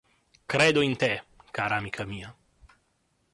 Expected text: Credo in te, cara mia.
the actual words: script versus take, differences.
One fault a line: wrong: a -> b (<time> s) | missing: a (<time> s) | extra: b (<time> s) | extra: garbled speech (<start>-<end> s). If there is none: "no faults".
extra: amica (1.7 s)